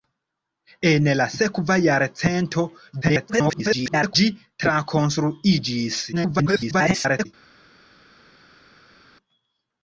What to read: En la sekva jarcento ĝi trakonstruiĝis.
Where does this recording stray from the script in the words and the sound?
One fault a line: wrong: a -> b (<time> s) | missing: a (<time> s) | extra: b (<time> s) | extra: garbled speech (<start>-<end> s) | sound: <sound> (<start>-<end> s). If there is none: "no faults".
extra: garbled speech (3.0-4.2 s)
extra: garbled speech (6.1-7.3 s)